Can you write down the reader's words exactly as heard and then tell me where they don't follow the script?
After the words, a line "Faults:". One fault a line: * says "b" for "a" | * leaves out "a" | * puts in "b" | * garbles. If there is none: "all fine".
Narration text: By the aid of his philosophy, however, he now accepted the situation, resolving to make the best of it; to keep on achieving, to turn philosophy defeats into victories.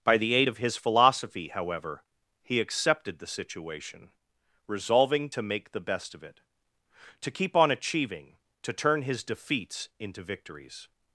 By the aid of his philosophy, however, he accepted the situation, resolving to make the best of it; to keep on achieving, to turn his defeats into victories.
Faults:
* leaves out "now"
* says "his" for "philosophy"